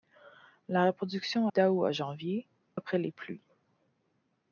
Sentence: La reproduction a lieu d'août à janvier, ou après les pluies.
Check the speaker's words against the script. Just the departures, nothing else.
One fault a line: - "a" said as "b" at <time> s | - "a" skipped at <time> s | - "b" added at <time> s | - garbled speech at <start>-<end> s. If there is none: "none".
- "a lieu" skipped at 1.5 s
- "ou" skipped at 2.5 s